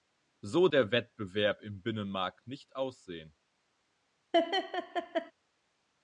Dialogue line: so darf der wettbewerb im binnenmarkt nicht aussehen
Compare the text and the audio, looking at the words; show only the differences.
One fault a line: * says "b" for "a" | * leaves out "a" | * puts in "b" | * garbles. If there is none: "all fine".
* leaves out "darf"